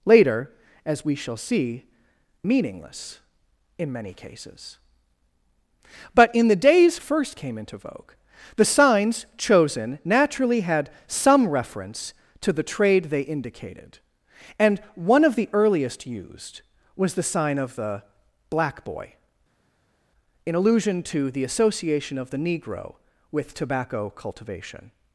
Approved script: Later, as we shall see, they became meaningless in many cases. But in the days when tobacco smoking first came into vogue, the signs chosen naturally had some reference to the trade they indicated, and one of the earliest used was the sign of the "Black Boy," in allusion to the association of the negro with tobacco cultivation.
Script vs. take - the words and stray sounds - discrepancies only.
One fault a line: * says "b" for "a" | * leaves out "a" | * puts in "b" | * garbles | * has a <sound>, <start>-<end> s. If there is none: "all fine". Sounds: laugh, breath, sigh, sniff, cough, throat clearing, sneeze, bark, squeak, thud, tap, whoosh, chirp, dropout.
* leaves out "they became"
* leaves out "when tobacco smoking"